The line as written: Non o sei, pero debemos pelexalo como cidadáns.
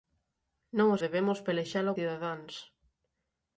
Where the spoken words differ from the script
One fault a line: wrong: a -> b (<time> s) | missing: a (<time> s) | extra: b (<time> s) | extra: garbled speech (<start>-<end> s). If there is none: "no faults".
missing: sei pero (1.0 s)
missing: como (1.9 s)